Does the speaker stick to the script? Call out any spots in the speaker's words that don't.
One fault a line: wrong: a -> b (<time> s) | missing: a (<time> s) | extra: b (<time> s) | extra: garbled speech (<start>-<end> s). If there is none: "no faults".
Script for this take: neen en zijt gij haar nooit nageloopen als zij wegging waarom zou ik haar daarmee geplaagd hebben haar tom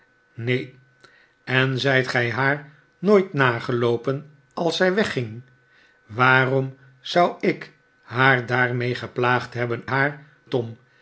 no faults